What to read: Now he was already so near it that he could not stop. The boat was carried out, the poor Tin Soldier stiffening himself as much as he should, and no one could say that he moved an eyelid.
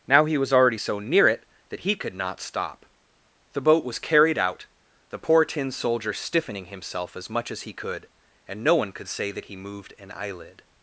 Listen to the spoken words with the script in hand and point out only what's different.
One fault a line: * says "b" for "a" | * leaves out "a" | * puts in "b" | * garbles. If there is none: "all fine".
* says "could" for "should"